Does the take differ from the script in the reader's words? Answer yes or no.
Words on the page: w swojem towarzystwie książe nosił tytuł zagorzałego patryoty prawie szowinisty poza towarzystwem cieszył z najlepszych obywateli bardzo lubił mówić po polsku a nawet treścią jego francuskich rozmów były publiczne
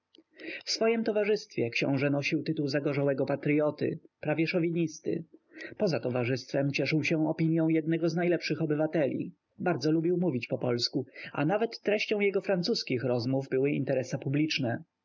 yes